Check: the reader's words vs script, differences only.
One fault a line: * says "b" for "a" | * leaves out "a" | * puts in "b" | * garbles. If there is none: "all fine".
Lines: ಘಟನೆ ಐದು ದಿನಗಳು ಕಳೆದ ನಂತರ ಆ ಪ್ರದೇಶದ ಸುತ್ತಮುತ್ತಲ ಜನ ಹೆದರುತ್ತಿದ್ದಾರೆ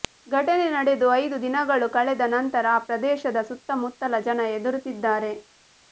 * puts in "ನಡೆದು"